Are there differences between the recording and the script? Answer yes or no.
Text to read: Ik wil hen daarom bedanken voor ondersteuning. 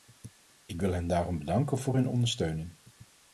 yes